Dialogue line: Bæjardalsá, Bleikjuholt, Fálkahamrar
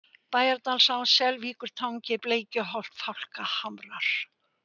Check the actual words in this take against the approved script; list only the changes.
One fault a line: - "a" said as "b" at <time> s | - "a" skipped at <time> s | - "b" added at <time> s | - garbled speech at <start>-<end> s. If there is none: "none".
- "Selvíkurtangi" added at 1.2 s